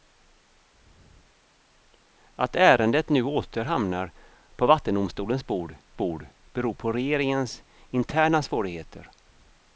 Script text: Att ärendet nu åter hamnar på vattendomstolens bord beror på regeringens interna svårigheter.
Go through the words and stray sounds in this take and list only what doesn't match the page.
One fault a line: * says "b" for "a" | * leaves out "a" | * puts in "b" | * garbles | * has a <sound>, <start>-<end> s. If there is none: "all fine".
* puts in "bord"